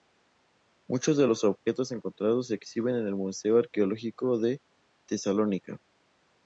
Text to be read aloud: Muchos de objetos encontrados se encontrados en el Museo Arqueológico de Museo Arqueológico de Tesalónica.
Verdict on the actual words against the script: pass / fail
fail